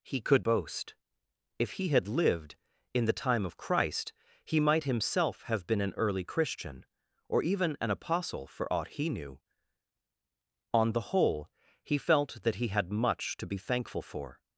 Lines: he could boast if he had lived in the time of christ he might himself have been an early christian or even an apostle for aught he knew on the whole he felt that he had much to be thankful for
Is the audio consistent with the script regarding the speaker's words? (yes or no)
yes